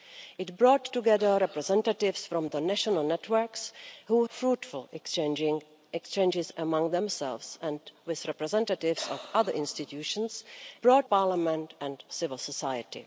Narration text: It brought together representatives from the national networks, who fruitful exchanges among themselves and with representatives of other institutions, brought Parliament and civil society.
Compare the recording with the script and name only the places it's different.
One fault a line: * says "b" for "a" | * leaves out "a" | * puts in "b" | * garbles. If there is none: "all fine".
all fine